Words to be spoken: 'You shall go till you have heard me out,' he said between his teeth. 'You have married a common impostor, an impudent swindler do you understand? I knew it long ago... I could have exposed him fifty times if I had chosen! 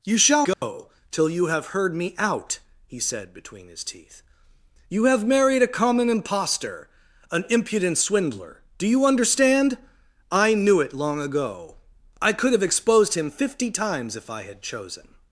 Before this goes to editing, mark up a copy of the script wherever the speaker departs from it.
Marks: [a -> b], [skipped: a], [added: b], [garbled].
'You shall go till you have heard me out,' he said between his teeth. 'You have married a common impostor, an impudent swindler do you understand? I knew it long ago... I could have exposed him fifty times if I had chosen!